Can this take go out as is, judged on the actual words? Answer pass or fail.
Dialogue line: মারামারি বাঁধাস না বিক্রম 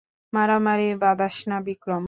pass